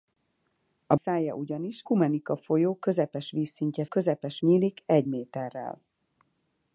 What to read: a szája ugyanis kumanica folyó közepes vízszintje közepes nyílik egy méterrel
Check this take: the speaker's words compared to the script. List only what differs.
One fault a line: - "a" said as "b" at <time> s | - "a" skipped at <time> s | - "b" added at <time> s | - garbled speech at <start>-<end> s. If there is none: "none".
none